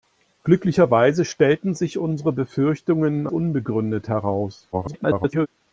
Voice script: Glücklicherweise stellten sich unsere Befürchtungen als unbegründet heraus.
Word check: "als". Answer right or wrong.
wrong